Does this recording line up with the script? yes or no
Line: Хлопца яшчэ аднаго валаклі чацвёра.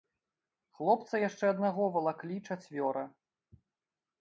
yes